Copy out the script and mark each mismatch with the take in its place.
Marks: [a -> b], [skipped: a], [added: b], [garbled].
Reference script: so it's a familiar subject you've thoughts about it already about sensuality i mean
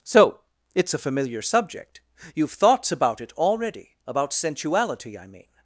so it's a familiar subject you've thoughts about it already about sensuality i mean